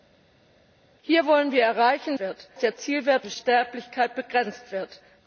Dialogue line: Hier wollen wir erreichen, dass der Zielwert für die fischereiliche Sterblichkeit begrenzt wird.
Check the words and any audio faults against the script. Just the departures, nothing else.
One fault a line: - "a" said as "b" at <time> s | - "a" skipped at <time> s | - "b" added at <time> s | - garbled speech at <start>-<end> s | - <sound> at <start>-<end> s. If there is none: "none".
- "dass" said as "wird" at 2.2 s
- "für die fischereiliche" skipped at 3.3 s